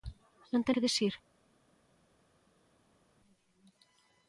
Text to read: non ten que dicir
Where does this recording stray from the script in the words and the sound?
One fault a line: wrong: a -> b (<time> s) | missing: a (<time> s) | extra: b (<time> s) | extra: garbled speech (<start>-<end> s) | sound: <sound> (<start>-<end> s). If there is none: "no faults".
no faults